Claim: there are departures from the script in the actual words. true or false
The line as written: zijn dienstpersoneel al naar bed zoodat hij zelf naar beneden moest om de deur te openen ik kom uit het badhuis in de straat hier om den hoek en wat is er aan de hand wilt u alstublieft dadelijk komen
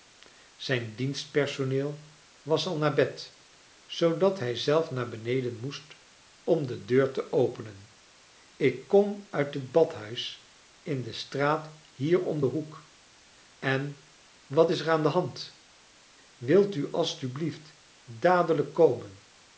true